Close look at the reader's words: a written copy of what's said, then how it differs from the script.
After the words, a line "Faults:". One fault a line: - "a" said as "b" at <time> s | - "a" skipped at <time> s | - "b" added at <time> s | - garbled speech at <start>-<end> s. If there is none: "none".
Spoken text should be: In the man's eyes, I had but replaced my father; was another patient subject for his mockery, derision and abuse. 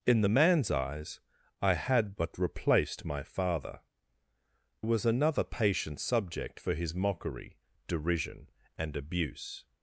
In the man's eyes, I had but replaced my father; was another patient subject for his mockery, derision and abuse.
Faults:
none